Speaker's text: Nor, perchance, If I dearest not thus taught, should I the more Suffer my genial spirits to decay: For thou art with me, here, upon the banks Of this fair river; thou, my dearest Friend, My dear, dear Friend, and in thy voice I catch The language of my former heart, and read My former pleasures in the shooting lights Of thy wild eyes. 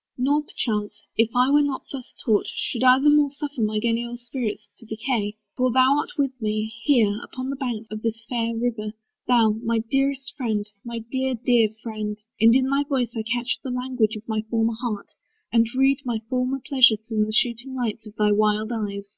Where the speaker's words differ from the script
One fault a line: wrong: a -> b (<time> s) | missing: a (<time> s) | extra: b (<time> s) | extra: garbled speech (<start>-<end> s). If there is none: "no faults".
wrong: dearest -> were (1.5 s)